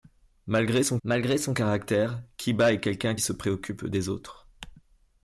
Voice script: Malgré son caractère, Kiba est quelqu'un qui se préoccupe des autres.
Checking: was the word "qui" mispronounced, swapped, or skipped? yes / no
yes